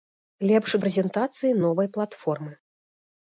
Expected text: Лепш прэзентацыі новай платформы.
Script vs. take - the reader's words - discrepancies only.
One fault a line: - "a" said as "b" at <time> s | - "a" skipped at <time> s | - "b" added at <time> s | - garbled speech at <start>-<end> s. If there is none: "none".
none